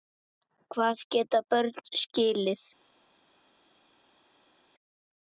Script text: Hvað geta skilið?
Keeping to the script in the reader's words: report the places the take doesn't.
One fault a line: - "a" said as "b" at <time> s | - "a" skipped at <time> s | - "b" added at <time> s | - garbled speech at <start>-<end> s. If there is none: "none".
- "börn" added at 1.6 s